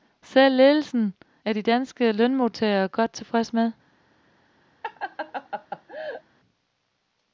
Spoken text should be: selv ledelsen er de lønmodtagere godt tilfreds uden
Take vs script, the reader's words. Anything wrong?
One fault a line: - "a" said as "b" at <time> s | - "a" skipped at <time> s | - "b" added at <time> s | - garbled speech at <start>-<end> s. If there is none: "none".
- "danske" added at 1.6 s
- "uden" said as "med" at 3.5 s